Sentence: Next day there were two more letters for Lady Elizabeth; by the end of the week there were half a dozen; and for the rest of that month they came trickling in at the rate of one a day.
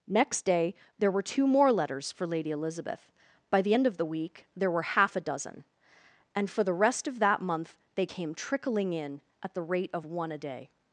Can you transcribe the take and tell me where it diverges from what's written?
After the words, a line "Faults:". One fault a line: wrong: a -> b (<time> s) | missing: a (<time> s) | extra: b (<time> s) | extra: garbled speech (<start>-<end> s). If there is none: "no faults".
Next day there were two more letters for Lady Elizabeth; by the end of the week there were half a dozen; and for the rest of that month they came trickling in at the rate of one a day.
Faults:
no faults